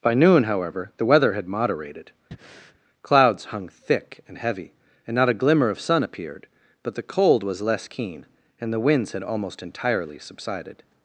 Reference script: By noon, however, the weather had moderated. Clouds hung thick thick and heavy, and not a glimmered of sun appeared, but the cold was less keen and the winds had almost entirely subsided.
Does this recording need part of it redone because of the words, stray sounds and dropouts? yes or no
yes